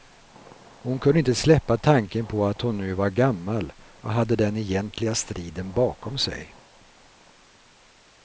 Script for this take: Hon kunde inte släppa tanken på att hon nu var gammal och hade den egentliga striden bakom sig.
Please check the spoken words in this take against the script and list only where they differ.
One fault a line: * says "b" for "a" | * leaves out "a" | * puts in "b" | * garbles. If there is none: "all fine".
all fine